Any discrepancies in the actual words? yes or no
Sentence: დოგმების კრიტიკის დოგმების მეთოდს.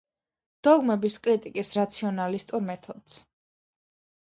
yes